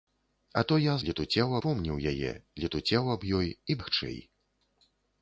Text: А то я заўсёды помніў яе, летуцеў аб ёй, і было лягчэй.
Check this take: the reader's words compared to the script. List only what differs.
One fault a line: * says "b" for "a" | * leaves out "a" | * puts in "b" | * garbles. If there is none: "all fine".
* says "летуцеў" for "заўсёды"
* leaves out "было"